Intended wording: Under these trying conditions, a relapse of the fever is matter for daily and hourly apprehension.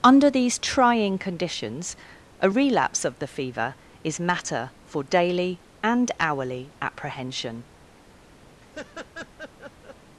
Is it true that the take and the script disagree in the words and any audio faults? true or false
true